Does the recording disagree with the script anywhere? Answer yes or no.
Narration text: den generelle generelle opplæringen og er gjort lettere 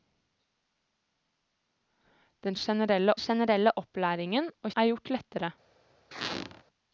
no